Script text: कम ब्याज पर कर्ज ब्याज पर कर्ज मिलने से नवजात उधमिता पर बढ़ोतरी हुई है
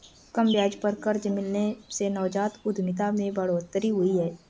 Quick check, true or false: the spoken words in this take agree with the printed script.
false